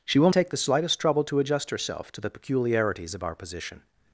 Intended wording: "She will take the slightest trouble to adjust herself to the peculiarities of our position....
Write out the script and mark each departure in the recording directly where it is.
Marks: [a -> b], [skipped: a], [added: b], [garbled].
"She will take the slightest trouble to adjust herself to the peculiarities of our position....